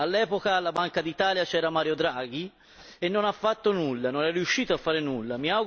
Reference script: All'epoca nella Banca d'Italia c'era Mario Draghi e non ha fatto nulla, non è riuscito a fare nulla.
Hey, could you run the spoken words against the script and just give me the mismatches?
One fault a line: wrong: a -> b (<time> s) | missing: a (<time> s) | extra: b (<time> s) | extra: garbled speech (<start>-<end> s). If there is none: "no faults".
wrong: nella -> alla (0.6 s)